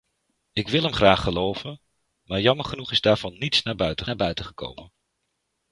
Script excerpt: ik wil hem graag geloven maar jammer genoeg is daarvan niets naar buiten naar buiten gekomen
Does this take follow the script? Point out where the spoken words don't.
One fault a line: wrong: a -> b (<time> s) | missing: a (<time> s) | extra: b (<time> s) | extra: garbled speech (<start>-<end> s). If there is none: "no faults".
no faults